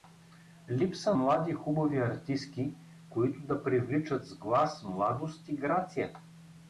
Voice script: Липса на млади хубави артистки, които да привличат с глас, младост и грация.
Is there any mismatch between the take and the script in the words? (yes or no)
yes